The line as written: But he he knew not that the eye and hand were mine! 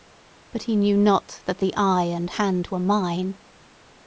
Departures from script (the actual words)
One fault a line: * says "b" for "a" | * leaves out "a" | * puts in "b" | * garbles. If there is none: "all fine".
* leaves out "he"